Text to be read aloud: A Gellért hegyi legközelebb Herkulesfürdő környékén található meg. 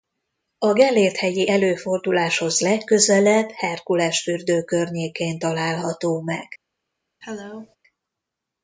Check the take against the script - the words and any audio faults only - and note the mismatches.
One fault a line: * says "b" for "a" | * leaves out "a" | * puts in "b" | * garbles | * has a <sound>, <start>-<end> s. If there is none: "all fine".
* puts in "előforduláshoz"
* has a cough, 7.2-7.8 s